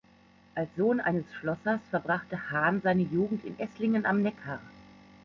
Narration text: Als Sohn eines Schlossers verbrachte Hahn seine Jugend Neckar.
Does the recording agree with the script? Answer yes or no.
no